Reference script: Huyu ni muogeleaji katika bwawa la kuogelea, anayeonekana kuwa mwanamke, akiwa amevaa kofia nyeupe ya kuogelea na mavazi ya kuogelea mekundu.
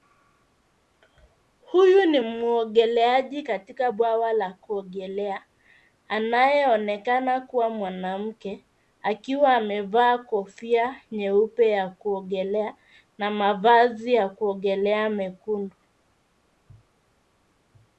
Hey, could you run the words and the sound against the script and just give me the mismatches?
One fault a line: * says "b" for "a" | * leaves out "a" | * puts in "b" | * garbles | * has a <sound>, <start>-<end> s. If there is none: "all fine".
all fine